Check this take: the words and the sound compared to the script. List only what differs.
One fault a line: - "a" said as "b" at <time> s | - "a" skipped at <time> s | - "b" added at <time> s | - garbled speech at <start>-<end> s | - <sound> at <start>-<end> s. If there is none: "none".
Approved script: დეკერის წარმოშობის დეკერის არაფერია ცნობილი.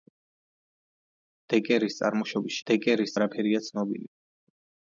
none